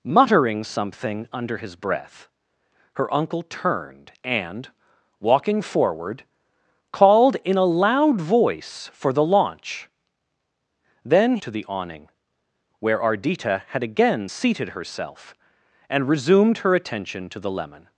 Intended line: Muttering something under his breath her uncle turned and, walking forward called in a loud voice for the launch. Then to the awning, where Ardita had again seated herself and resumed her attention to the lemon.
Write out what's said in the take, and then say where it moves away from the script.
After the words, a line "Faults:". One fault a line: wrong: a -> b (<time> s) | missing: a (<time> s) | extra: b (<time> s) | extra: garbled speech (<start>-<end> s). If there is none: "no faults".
Muttering something under his breath her uncle turned and, walking forward called in a loud voice for the launch. Then to the awning, where Ardita had again seated herself and resumed her attention to the lemon.
Faults:
no faults